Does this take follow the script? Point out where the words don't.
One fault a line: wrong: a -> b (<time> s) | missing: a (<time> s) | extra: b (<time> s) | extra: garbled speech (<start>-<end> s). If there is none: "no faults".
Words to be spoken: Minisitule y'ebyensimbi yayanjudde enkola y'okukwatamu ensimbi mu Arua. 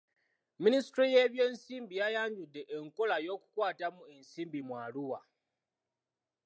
no faults